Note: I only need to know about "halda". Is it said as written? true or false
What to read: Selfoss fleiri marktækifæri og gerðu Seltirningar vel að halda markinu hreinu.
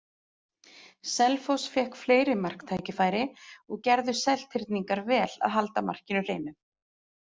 true